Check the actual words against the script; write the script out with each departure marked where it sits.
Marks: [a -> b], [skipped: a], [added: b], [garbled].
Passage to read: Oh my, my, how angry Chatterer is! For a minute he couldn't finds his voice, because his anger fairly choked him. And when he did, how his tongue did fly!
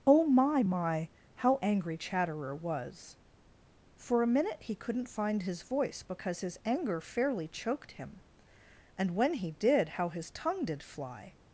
Oh my, my, how angry Chatterer [is! -> was] For a minute he couldn't [finds -> find] his voice, because his anger fairly choked him. And when he did, how his tongue did fly!